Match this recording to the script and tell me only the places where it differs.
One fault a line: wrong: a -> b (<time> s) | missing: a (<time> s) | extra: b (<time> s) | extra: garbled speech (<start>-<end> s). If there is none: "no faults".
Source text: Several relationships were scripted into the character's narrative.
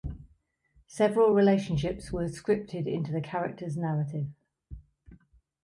no faults